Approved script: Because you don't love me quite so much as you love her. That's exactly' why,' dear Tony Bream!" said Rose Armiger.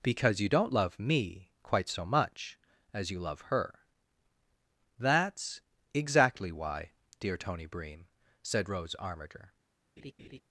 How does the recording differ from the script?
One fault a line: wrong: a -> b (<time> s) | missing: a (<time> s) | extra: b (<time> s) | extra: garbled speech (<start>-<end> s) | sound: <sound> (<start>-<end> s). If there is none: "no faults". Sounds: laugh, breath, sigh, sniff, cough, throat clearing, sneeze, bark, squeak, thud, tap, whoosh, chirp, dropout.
sound: laugh (10.0-10.4 s)